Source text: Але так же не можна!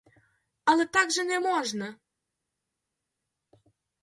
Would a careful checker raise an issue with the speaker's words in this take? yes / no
no